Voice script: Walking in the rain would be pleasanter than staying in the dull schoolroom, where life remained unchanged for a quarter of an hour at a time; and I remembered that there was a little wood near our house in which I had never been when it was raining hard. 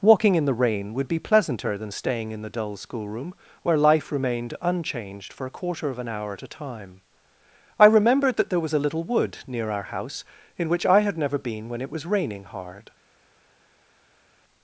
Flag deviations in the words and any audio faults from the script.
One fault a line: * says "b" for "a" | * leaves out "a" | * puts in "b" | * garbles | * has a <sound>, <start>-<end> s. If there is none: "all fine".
* leaves out "and"